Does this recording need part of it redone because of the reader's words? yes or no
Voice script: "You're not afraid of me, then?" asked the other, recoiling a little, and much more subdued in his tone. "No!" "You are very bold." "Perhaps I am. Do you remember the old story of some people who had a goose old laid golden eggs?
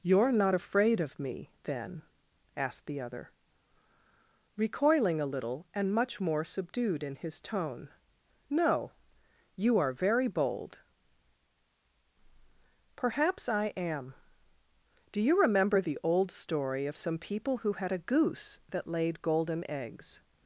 yes